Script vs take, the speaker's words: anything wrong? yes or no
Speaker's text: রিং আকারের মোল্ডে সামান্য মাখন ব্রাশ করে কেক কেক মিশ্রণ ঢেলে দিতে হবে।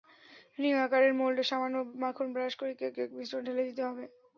no